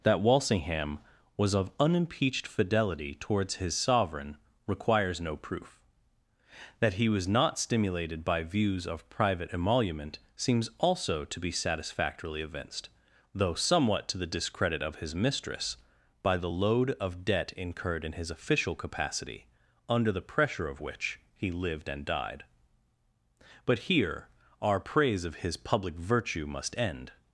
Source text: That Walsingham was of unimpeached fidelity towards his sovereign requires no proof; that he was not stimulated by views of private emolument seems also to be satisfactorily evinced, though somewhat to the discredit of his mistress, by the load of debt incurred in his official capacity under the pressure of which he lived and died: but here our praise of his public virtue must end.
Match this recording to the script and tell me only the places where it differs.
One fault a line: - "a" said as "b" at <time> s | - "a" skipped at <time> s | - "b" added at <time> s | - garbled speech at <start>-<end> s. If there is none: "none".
none